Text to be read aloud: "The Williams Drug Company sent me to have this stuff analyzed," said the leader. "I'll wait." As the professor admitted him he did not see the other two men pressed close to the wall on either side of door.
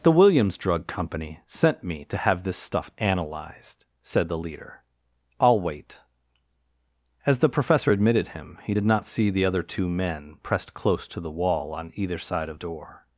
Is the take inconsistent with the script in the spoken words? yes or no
no